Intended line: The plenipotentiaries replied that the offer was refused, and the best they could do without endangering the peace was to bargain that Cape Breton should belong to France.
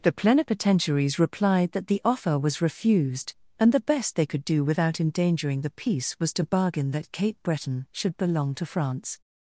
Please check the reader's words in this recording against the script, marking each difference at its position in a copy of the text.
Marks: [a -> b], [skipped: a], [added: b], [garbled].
The plenipotentiaries replied that the offer was refused, and the best they could do without endangering the peace was to bargain that Cape Breton should belong to France.